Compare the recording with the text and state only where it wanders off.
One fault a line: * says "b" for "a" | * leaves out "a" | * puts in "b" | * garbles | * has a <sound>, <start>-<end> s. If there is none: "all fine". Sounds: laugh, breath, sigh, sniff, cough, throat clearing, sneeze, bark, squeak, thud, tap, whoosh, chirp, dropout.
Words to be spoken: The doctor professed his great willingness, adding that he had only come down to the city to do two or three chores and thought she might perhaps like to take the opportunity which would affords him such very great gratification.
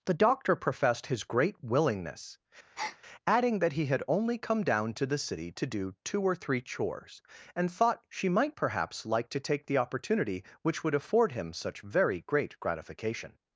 * has a breath, 2.8-3.0 s
* says "afford" for "affords"